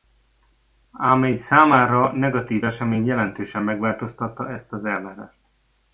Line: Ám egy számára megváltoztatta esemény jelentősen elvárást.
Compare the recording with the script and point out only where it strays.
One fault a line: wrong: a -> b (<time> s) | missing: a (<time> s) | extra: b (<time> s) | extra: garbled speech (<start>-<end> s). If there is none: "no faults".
wrong: megváltoztatta -> negatív (2.1 s)
extra: megváltoztatta ezt az (3.6 s)